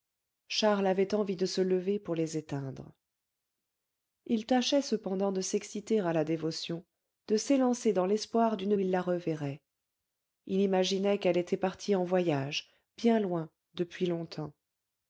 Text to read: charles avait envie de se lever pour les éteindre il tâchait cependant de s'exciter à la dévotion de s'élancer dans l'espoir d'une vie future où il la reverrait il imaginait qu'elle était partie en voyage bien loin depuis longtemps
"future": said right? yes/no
no